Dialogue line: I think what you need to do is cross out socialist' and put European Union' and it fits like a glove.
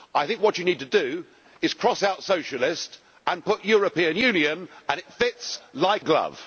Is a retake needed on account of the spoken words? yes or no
yes